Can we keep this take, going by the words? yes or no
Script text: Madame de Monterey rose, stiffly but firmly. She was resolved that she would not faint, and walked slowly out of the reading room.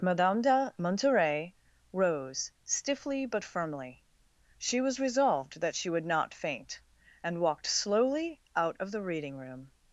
yes